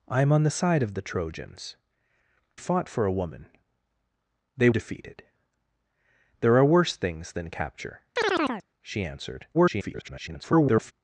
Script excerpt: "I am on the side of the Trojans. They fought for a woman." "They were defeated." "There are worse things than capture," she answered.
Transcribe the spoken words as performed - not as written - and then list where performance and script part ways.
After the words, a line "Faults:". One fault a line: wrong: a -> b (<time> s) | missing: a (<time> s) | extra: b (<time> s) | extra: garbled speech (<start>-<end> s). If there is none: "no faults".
"I am on the side of the Trojans. Fought for a woman." "They defeated." "There are worse things than capture," she answered. [garbled]
Faults:
missing: They (1.8 s)
missing: were (4.7 s)
extra: garbled speech (9.5-10.9 s)